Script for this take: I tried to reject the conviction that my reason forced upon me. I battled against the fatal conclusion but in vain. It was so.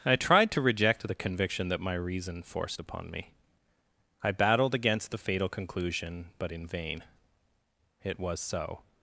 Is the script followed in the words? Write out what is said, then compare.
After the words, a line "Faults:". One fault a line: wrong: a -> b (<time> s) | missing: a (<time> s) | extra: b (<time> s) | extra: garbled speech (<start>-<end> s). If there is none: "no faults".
I tried to reject the conviction that my reason forced upon me. I battled against the fatal conclusion but in vain. It was so.
Faults:
no faults